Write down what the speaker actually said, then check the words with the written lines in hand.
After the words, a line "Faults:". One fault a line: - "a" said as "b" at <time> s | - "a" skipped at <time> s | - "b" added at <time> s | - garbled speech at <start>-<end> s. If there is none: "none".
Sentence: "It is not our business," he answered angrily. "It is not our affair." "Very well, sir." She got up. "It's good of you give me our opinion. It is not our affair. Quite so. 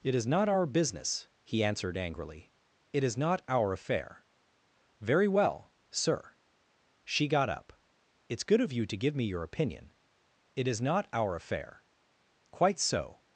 "It is not our business," he answered angrily. "It is not our affair." "Very well, sir." She got up. "It's good of you to give me your opinion. It is not our affair. Quite so.
Faults:
- "to" added at 8.8 s
- "our" said as "your" at 9.2 s